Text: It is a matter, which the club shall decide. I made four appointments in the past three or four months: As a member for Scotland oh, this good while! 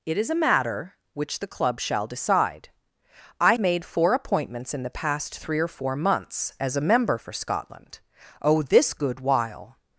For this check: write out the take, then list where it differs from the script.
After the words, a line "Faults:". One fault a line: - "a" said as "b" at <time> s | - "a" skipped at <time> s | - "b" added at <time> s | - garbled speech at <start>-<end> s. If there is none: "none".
It is a matter, which the club shall decide. I made four appointments in the past three or four months: As a member for Scotland oh, this good while!
Faults:
none